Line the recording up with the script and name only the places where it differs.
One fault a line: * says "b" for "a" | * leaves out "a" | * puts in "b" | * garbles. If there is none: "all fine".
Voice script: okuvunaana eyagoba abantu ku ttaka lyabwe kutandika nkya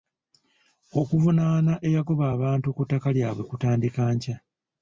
all fine